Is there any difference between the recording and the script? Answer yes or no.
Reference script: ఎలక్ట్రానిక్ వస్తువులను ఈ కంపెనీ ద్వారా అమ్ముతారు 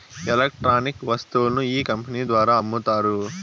no